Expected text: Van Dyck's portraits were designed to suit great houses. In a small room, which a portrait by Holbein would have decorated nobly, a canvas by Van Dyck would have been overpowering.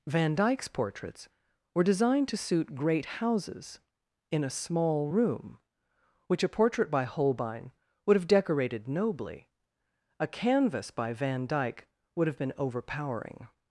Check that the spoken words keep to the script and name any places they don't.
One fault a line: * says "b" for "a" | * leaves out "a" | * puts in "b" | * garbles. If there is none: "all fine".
all fine